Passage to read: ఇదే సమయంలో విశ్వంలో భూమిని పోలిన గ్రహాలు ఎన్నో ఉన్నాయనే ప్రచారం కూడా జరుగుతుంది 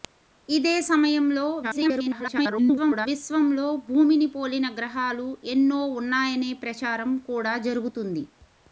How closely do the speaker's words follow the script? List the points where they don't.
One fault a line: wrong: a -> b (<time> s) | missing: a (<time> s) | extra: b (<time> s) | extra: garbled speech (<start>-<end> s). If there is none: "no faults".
extra: garbled speech (1.6-3.1 s)